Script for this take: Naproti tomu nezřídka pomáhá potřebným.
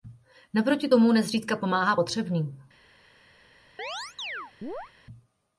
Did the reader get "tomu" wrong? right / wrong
right